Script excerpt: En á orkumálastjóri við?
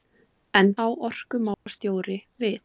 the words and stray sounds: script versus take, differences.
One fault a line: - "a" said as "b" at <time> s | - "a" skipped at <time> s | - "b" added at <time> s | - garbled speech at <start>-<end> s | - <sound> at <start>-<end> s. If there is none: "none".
- dropout at 1.5-1.7 s